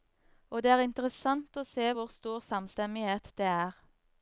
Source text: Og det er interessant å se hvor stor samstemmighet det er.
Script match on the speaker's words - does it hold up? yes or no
yes